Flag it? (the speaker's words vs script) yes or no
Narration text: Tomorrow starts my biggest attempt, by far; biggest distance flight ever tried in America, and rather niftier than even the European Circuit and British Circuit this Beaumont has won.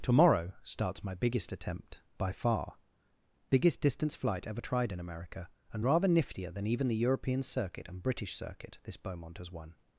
no